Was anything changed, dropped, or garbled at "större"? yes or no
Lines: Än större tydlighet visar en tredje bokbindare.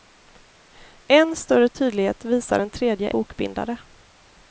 no